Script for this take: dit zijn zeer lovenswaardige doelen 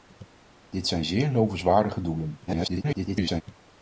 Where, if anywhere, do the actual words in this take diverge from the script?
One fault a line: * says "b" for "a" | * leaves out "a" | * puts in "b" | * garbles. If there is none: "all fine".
* garbles